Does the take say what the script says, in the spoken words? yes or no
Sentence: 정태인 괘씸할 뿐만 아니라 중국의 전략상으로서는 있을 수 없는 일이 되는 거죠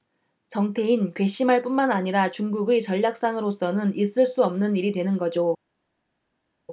yes